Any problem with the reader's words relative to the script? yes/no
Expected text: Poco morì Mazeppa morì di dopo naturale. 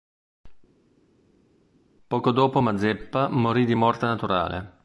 yes